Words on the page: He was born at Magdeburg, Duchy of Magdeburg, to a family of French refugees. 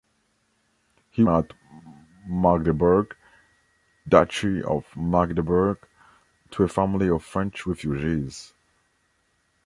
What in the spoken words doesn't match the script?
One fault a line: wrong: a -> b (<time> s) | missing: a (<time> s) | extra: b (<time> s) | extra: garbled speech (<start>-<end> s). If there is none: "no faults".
missing: was born (1.2 s)